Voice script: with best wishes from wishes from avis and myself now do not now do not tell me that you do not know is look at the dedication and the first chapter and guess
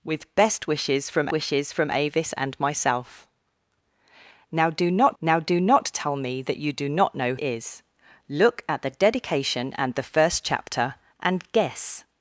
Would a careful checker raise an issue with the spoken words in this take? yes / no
no